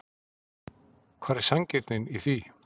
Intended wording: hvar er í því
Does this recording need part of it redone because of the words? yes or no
yes